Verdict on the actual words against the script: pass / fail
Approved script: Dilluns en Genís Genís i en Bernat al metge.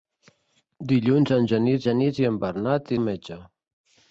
pass